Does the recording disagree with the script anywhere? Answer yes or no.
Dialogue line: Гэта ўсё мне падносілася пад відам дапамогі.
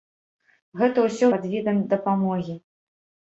yes